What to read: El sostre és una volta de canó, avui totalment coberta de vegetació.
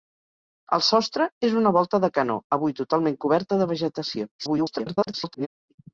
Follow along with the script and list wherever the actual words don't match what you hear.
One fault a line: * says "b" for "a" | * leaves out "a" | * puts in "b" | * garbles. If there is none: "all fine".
* garbles